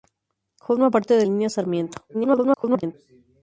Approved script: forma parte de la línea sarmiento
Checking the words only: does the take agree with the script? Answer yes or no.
no